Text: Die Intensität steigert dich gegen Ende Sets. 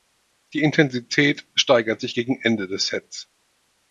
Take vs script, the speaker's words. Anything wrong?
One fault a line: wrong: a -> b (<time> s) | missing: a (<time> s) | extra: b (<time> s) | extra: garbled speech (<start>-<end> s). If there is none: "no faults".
wrong: dich -> sich (2.0 s)
extra: des (2.7 s)